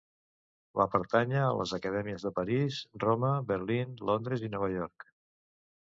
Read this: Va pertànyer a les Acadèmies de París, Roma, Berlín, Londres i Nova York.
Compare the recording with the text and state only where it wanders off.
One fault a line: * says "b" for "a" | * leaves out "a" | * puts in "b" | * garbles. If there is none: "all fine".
all fine